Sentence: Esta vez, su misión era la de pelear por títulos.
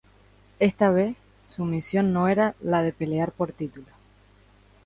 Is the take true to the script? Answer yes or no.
no